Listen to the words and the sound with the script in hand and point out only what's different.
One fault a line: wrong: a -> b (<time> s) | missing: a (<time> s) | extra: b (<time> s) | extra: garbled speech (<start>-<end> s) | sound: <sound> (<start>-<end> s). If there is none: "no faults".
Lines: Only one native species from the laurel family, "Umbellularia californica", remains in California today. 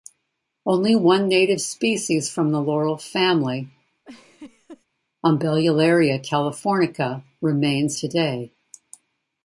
sound: laugh (4.1-4.9 s)
missing: in California (8.0 s)